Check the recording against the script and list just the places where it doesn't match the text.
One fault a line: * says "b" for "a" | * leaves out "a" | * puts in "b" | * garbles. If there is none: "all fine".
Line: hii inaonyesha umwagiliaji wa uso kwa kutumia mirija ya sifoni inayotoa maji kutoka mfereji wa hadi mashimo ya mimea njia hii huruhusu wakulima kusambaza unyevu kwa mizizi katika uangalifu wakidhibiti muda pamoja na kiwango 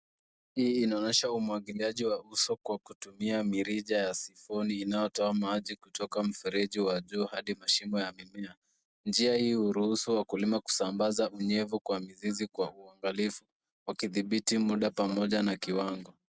* puts in "juu"
* says "kwa" for "katika"